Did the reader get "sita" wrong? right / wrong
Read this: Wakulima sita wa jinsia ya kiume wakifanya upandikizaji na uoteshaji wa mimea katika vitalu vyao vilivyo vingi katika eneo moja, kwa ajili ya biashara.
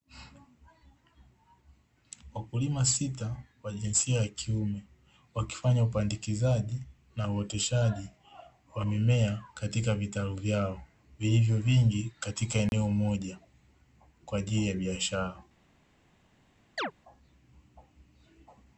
right